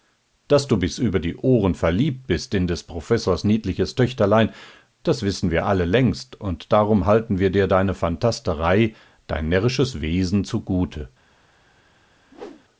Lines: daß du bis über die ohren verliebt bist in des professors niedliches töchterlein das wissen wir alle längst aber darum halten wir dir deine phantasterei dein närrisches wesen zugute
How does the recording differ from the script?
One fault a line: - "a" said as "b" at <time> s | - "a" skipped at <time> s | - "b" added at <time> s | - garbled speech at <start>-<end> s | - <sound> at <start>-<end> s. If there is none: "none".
- "aber" said as "und" at 6.4 s
- whoosh at 12.3-12.7 s